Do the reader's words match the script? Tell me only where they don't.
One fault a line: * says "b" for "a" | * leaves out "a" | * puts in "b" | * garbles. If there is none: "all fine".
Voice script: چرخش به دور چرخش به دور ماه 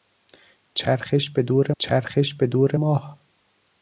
all fine